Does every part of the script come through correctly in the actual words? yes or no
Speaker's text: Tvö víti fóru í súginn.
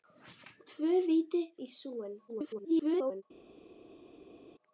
no